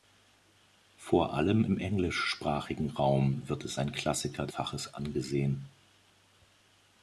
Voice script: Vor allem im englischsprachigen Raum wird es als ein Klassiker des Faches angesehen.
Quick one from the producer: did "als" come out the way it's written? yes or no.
no